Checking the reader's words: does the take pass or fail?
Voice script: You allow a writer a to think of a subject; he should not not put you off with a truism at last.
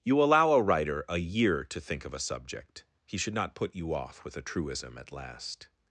fail